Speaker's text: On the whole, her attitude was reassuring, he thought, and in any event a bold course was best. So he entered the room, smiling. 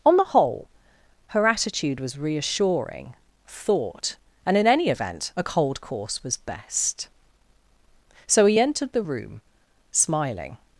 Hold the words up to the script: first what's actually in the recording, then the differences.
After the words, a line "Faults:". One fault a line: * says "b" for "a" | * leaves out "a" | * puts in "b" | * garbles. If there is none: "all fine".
On the whole, her attitude was reassuring, thought, and in any event a cold course was best. So he entered the room, smiling.
Faults:
* leaves out "he"
* says "cold" for "bold"